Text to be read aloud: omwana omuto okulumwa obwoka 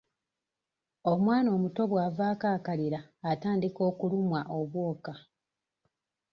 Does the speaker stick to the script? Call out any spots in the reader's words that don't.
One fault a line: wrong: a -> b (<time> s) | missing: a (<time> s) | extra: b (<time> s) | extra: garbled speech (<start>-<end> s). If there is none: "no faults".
extra: bw'avaako akalira atandika (1.9 s)